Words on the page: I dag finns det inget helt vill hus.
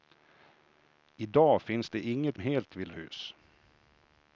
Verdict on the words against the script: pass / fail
pass